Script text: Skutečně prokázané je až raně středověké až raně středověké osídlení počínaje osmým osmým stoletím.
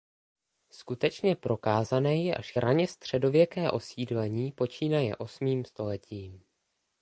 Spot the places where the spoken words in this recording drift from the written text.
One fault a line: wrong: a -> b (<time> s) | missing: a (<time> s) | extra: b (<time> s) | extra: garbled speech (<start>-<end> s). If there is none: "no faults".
missing: až raně středověké (3.7 s)
missing: osmým (5.7 s)